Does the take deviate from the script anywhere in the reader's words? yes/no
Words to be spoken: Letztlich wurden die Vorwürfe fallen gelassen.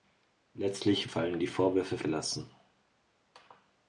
yes